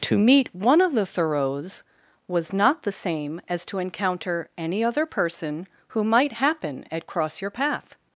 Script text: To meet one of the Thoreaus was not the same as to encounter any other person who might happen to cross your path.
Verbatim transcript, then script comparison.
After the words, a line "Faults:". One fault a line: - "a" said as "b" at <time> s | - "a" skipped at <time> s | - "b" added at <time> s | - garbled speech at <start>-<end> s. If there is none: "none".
To meet one of the Thoreaus was not the same as to encounter any other person who might happen at cross your path.
Faults:
- "to" said as "at" at 6.9 s